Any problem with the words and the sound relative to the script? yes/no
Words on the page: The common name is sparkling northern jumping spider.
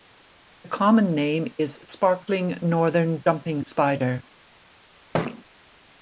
yes